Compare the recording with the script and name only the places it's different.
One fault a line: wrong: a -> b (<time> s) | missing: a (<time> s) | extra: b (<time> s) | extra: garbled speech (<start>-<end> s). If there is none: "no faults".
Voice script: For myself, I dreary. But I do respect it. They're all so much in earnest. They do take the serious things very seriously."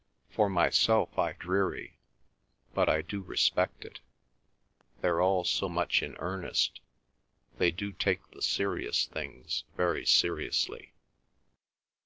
no faults